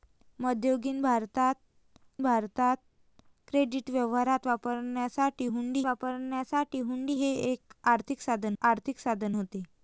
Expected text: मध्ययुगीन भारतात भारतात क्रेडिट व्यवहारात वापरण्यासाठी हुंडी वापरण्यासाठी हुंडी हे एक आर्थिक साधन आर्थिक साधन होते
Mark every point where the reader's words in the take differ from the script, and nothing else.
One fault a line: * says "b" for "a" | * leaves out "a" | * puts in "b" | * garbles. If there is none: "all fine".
all fine